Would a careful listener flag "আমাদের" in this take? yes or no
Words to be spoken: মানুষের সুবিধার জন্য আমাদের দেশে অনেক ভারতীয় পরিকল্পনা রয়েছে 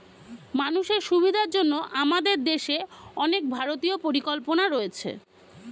no